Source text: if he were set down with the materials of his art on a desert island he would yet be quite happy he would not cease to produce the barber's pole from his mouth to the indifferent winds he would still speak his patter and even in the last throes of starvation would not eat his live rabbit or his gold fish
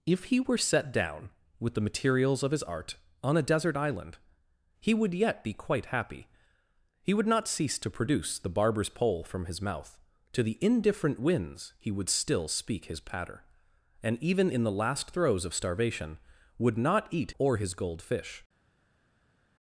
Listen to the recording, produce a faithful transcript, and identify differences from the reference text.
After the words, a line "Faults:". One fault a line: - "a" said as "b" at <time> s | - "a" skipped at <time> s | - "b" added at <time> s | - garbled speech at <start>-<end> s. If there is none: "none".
if he were set down with the materials of his art on a desert island he would yet be quite happy he would not cease to produce the barber's pole from his mouth to the indifferent winds he would still speak his patter and even in the last throes of starvation would not eat or his gold fish
Faults:
- "his live rabbit" skipped at 17.3 s